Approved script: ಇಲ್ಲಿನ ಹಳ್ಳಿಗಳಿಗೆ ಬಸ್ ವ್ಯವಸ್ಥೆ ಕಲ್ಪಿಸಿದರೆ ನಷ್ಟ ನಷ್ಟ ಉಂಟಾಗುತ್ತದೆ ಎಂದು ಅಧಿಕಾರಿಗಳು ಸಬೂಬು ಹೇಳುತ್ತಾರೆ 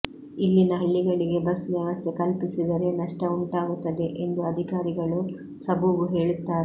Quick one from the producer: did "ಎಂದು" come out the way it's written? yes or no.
yes